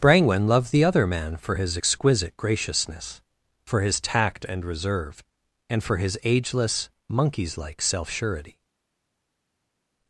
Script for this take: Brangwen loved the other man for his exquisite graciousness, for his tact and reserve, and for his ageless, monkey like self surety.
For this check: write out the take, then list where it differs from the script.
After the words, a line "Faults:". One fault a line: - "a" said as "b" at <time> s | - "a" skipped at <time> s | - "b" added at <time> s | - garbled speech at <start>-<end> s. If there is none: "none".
Brangwen loved the other man for his exquisite graciousness, for his tact and reserve, and for his ageless, monkeys like self surety.
Faults:
- "monkey" said as "monkeys" at 7.1 s